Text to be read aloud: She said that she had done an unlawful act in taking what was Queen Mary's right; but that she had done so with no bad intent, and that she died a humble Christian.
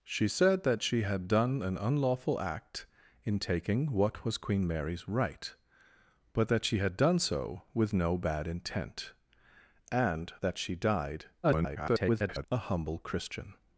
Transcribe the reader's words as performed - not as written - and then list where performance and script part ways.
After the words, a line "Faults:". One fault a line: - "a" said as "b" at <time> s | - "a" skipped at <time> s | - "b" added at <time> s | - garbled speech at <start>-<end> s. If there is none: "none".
She said that she had done an unlawful act in taking what was Queen Mary's right; but that she had done so with no bad intent, and that she died [garbled] a humble Christian.
Faults:
- garbled speech at 11.4-12.5 s